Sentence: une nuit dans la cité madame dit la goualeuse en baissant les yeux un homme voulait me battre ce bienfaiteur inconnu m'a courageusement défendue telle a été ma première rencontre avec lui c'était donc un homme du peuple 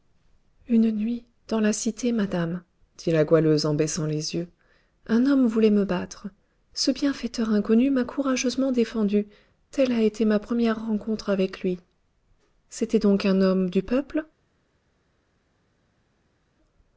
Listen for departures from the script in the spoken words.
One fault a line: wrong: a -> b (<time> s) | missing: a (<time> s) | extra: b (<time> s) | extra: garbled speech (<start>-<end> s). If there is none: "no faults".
no faults